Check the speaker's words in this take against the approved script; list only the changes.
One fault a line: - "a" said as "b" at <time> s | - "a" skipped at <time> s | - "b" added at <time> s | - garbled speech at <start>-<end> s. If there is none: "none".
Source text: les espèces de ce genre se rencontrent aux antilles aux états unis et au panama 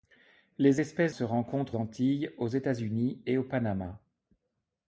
- "de ce genre" skipped at 1.1 s
- "aux" skipped at 1.7 s